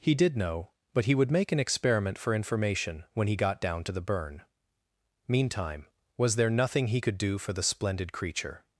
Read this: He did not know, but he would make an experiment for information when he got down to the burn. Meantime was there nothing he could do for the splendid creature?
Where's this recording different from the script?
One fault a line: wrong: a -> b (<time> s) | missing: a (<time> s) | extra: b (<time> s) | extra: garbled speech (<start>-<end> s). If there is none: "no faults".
missing: not (0.3 s)